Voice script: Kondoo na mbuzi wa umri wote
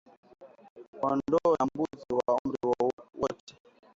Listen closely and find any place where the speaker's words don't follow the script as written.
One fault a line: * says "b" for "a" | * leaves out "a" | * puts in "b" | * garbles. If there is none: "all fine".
all fine